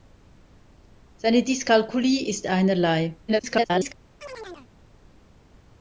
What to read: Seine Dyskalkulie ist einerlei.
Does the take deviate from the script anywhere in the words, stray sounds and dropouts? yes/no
yes